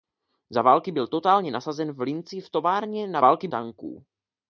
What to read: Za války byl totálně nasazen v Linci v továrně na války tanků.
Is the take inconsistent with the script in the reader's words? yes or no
no